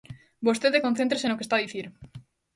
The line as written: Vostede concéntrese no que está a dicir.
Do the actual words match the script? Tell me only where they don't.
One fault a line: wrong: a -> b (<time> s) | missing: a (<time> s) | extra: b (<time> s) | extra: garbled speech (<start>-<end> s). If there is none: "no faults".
no faults